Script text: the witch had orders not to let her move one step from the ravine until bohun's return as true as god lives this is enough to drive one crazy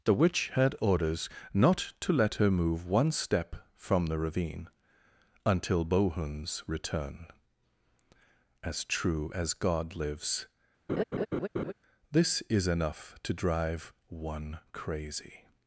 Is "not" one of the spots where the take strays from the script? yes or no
no